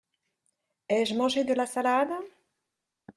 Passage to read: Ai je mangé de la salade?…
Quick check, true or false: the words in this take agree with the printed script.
true